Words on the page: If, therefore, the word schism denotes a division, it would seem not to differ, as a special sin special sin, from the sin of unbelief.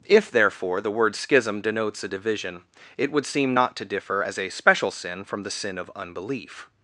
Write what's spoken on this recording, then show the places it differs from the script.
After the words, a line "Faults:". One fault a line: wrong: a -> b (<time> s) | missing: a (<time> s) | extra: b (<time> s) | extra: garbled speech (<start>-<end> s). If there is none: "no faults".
If, therefore, the word schism denotes a division, it would seem not to differ, as a special sin, from the sin of unbelief.
Faults:
missing: special sin (5.2 s)